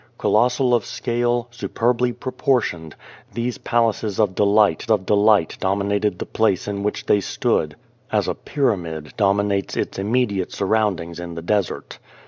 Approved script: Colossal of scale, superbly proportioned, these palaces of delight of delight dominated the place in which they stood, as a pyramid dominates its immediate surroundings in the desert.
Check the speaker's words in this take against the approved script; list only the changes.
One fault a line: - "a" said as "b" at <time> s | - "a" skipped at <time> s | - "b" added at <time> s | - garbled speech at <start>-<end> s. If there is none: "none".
none